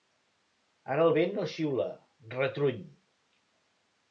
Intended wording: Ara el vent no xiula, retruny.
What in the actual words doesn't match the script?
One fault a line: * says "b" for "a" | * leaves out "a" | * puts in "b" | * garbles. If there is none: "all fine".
all fine